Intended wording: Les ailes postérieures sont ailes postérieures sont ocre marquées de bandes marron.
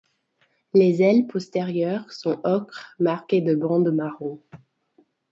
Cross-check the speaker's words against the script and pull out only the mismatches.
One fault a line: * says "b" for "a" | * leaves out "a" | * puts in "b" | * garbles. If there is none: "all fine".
* leaves out "ailes postérieures sont"